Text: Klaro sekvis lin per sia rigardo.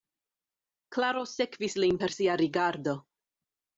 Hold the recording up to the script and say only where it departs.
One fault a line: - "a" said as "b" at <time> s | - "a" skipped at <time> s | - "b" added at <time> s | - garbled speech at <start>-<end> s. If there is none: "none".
none